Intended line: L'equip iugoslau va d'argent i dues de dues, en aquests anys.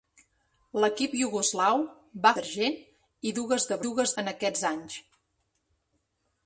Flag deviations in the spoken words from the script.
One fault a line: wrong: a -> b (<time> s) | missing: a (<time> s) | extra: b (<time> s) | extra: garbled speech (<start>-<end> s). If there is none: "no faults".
no faults